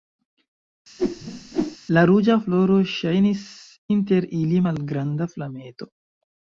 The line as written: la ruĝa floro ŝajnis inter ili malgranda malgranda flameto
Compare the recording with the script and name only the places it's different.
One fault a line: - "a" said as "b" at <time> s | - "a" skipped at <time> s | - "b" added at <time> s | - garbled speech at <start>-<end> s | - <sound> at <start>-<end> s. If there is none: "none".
- whoosh at 1.0-1.8 s
- "malgranda" skipped at 5.3 s